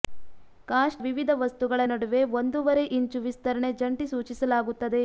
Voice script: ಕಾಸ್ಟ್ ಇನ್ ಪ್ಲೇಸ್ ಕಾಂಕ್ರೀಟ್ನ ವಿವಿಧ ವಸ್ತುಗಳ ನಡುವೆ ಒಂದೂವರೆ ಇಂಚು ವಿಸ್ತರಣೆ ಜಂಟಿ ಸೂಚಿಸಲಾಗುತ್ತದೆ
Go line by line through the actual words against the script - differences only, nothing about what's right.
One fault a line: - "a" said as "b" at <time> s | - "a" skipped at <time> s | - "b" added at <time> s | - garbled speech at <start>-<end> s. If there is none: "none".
- "ಇನ್ ಪ್ಲೇಸ್ ಕಾಂಕ್ರೀಟ್ನ" skipped at 1.0 s